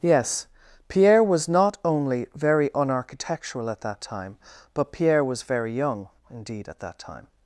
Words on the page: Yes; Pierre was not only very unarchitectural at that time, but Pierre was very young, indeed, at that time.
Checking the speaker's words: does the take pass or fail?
pass